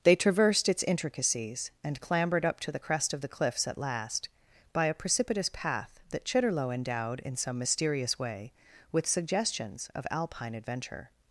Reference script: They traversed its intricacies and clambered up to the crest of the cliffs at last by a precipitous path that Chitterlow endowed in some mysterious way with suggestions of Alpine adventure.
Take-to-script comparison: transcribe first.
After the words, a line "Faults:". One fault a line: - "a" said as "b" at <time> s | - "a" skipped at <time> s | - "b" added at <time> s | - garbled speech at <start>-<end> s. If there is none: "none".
They traversed its intricacies and clambered up to the crest of the cliffs at last by a precipitous path that Chitterlow endowed in some mysterious way with suggestions of Alpine adventure.
Faults:
none